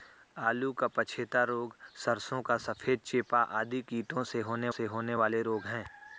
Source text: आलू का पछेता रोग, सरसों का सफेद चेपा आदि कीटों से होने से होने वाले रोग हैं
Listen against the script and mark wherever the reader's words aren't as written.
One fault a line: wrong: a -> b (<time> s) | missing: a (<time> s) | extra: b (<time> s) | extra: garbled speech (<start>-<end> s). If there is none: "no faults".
no faults